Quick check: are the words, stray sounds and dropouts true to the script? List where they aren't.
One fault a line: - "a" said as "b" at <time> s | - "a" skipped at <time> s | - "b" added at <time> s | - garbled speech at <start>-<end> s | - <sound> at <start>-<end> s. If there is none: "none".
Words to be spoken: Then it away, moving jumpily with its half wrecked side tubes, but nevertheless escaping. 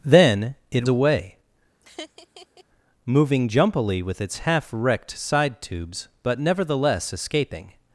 - laugh at 1.8-2.6 s